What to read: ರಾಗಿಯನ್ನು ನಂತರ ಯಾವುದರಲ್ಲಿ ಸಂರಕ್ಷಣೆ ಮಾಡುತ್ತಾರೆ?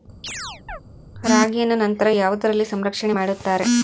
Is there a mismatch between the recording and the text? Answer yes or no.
no